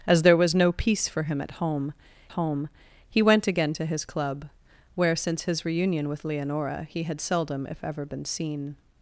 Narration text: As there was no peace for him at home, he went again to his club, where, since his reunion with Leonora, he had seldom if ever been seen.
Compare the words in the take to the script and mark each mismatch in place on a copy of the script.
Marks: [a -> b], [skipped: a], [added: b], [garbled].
As there was no peace for him at home, [added: home] he went again to his club, where, since his reunion with Leonora, he had seldom if ever been seen.